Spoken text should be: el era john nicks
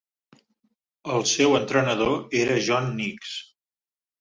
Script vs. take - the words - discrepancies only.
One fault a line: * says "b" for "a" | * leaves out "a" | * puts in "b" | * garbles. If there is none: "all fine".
* puts in "seu entrenador"